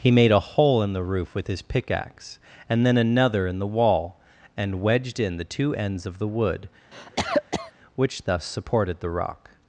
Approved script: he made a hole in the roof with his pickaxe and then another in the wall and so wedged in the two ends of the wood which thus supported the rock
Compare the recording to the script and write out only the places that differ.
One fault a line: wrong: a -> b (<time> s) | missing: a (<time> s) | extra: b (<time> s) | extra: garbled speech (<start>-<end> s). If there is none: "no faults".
missing: so (4.8 s)